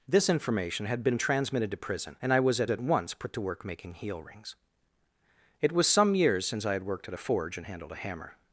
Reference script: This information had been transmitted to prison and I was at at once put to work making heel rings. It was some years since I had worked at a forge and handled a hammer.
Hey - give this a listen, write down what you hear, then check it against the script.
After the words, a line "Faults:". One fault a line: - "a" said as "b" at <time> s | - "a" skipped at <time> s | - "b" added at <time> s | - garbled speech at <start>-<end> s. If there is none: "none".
This information had been transmitted to prison and I was at at once put to work making heel rings. It was some years since I had worked at a forge and handled a hammer.
Faults:
none